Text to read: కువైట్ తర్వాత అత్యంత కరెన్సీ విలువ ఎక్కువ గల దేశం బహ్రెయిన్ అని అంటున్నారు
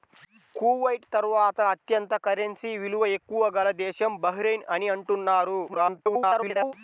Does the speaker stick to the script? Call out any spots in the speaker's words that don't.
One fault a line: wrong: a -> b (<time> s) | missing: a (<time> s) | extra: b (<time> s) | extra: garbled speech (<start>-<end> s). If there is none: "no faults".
extra: garbled speech (5.7-6.7 s)